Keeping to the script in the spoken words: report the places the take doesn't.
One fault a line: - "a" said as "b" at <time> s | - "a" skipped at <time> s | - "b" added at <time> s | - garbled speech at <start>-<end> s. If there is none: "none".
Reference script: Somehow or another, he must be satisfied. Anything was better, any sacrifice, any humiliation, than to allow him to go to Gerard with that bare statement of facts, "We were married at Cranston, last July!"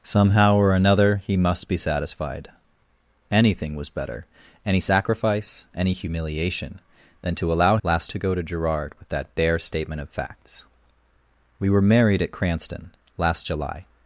- "him" said as "last" at 7.8 s